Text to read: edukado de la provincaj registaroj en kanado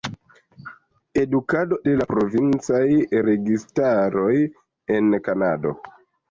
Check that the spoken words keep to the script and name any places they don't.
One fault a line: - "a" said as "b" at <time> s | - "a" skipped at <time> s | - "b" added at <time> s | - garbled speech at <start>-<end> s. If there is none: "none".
none